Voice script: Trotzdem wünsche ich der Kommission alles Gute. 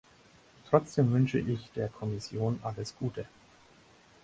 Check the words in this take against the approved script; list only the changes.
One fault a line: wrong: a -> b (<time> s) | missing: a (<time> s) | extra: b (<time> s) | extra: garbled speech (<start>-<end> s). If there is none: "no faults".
no faults